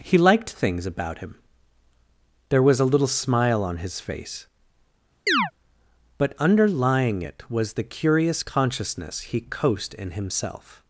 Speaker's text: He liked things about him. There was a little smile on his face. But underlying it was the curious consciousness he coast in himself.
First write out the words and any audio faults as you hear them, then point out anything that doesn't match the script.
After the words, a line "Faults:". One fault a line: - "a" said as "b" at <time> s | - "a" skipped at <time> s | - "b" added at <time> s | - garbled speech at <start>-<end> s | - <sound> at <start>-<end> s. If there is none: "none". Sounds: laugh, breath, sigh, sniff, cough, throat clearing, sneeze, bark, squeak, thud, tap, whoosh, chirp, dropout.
He liked things about him. There was a little smile on his face. But underlying it was the curious consciousness he coast in himself.
Faults:
- chirp at 5.3-5.5 s